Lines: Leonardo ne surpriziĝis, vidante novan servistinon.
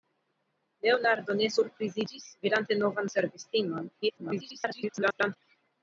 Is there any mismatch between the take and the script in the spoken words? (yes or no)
yes